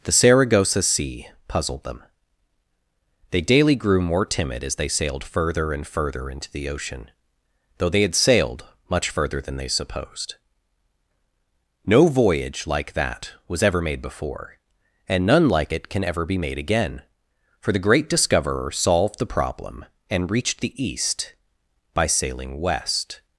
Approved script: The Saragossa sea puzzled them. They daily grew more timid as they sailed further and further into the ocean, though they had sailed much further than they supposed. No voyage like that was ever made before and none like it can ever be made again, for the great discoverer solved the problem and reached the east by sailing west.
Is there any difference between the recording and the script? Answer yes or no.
no